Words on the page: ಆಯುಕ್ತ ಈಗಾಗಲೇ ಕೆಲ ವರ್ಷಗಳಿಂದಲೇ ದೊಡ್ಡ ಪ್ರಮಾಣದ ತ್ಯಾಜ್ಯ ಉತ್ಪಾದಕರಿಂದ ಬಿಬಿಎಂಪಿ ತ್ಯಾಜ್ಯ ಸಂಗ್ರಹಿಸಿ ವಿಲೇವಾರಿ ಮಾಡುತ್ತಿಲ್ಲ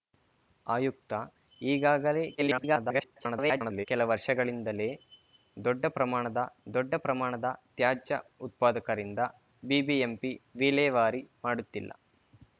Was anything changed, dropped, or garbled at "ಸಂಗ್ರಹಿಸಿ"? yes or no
yes